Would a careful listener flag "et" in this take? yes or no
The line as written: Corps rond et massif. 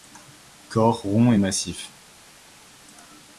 no